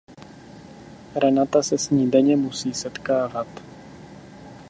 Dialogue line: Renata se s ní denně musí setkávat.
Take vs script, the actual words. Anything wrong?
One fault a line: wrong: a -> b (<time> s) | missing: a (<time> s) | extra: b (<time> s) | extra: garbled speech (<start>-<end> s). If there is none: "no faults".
no faults